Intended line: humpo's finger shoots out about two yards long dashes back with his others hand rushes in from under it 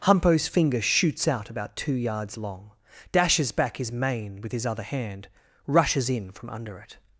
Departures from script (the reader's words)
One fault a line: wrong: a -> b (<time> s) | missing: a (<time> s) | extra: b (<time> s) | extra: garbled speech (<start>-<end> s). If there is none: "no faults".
extra: his mane (3.8 s)
wrong: others -> other (4.7 s)